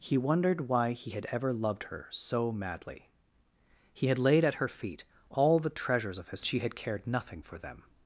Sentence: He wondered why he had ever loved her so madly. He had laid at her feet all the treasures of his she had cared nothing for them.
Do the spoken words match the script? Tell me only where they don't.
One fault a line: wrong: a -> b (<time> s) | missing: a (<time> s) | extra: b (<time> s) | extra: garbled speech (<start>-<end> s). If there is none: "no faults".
no faults